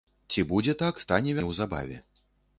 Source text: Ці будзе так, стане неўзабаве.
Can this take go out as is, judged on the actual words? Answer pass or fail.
pass